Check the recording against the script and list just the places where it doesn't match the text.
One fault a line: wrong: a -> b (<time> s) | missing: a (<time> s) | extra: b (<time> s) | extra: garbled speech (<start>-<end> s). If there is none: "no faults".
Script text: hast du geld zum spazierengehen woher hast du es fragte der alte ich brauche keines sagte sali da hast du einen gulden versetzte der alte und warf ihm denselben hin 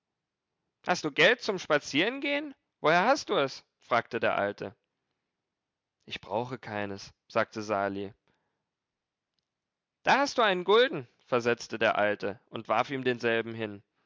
no faults